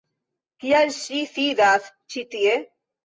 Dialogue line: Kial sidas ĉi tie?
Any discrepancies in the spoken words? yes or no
yes